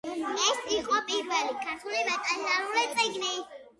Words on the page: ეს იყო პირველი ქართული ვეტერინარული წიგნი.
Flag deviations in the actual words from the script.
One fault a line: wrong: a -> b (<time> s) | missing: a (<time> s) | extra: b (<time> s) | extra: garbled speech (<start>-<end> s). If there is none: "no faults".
no faults